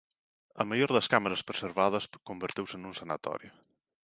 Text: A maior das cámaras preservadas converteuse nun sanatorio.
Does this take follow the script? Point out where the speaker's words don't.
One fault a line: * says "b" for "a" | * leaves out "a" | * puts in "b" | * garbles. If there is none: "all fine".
all fine